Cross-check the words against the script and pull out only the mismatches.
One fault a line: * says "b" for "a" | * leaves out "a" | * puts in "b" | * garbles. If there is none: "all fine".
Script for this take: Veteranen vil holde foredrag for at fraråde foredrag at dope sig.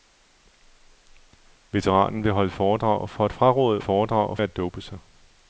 all fine